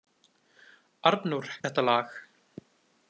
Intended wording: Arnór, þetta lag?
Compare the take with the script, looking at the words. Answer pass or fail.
pass